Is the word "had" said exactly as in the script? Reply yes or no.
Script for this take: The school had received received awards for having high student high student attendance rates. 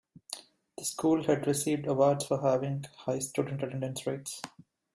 yes